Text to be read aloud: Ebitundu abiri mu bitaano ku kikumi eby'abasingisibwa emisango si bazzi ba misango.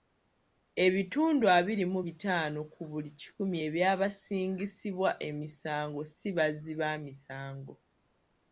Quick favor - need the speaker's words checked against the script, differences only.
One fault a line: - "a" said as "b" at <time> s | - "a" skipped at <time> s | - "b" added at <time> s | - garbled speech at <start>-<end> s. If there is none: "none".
- "buli" added at 2.9 s